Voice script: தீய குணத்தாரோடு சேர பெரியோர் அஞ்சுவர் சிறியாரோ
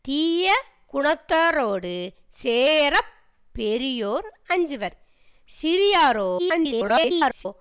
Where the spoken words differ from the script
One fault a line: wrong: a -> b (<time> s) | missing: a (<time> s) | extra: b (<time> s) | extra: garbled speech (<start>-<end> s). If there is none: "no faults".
extra: garbled speech (6.4-7.5 s)